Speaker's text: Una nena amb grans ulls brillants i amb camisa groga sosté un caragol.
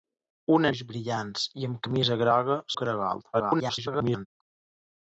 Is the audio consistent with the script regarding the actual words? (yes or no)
no